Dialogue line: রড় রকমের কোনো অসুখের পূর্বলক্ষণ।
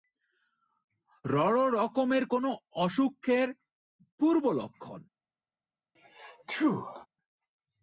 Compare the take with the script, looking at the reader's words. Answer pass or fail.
pass